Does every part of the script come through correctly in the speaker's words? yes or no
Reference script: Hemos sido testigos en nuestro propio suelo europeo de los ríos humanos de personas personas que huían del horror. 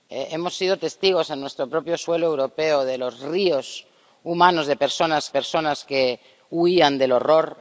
yes